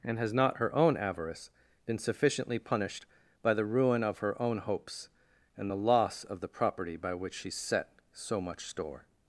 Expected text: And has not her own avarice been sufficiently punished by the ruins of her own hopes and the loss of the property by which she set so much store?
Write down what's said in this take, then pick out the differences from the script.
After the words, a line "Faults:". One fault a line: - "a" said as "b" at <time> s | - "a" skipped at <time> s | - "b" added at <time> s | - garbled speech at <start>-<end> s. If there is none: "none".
And has not her own avarice been sufficiently punished by the ruin of her own hopes and the loss of the property by which she set so much store?
Faults:
- "ruins" said as "ruin" at 3.6 s